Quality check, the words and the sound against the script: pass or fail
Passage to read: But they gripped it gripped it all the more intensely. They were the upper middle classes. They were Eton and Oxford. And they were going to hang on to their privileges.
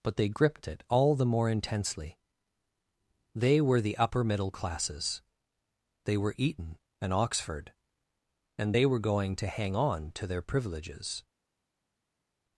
fail